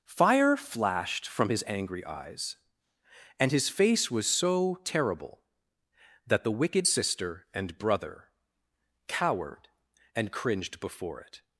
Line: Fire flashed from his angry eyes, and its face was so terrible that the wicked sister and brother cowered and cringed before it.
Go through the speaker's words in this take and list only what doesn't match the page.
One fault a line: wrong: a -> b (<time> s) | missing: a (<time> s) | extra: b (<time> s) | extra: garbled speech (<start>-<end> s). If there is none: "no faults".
wrong: its -> his (3.5 s)